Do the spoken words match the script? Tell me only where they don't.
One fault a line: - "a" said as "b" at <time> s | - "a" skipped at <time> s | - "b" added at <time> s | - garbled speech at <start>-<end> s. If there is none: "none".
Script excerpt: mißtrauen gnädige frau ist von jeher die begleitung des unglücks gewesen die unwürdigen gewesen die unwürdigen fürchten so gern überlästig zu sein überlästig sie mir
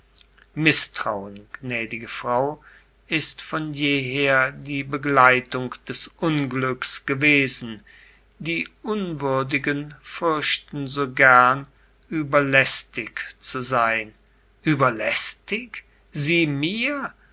- "gewesen die unwürdigen" skipped at 9.9 s